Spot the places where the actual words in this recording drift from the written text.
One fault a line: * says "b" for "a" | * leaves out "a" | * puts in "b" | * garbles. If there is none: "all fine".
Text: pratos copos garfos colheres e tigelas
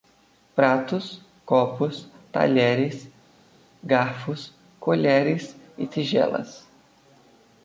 * puts in "talheres"